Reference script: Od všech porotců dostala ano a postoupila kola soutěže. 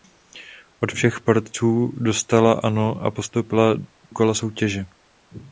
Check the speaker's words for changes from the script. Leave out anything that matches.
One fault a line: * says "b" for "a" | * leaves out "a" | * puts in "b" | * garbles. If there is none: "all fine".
all fine